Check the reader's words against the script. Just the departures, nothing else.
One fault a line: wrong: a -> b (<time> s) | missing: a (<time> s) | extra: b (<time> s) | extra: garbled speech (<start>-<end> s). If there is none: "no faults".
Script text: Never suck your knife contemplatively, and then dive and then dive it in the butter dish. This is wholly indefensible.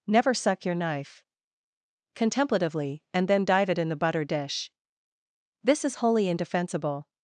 missing: and then dive (3.7 s)